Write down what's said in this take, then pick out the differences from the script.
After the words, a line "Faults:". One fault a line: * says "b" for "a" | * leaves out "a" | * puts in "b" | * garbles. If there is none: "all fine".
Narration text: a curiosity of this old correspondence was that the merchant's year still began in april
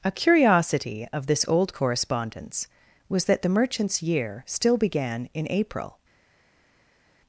a curiosity of this old correspondence was that the merchant's year still began in april
Faults:
all fine